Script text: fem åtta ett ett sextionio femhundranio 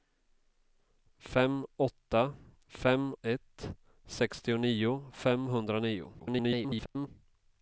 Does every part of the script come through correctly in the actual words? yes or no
no